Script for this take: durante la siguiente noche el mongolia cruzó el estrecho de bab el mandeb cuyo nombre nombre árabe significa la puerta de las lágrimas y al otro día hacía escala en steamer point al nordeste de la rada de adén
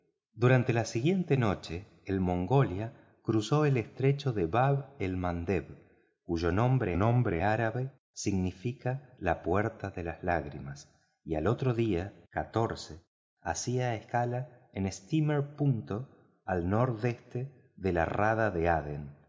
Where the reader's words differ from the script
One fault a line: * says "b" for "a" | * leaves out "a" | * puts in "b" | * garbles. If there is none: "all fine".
all fine